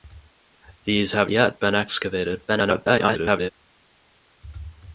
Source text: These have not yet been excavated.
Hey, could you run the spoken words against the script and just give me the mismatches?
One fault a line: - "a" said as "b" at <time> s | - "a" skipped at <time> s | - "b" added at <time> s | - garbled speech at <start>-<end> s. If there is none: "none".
- "not" skipped at 1.3 s
- garbled speech at 2.5-3.5 s